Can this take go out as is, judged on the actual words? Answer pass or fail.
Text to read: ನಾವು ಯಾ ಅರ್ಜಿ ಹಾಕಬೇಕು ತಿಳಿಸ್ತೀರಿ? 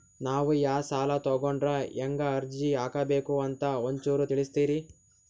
fail